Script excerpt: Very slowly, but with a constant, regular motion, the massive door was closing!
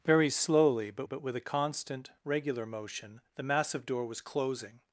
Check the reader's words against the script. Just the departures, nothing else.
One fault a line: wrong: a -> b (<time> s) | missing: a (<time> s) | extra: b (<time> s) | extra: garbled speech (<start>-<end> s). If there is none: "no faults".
extra: but (1.0 s)